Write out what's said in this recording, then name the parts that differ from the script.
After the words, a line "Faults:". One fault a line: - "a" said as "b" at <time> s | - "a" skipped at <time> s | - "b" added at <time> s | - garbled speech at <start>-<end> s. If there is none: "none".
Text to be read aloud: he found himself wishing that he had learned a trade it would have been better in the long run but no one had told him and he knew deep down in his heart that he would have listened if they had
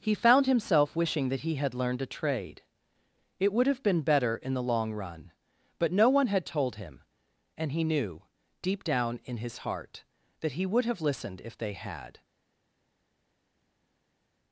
he found himself wishing that he had learned a trade it would have been better in the long run but no one had told him and he knew deep down in his heart that he would have listened if they had
Faults:
none